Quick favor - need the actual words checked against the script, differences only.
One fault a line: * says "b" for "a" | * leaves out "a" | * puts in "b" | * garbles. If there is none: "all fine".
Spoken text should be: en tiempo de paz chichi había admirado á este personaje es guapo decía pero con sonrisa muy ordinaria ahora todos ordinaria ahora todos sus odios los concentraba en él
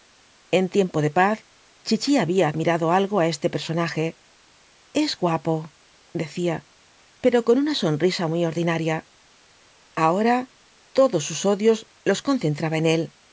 * puts in "algo"
* puts in "una"
* leaves out "ordinaria ahora todos"